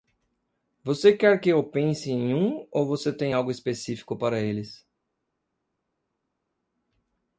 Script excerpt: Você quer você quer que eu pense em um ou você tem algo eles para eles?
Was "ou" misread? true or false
false